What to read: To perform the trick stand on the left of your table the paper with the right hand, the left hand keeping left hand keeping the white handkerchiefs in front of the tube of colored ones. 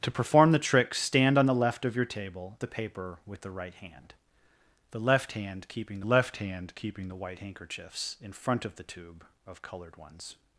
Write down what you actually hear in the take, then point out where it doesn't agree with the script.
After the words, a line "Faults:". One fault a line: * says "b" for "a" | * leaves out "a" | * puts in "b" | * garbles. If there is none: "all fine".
To perform the trick stand on the left of your table the paper with the right hand, the left hand keeping left hand keeping the white handkerchiefs in front of the tube of colored ones.
Faults:
all fine